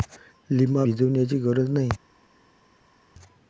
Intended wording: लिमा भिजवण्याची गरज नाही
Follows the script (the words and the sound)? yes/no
yes